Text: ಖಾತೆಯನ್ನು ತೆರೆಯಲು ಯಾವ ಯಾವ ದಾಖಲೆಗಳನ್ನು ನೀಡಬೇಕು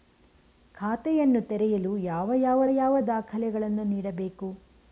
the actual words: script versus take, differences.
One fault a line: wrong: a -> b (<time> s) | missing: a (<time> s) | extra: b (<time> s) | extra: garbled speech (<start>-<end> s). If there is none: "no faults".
extra: ಯಾವ (2.7 s)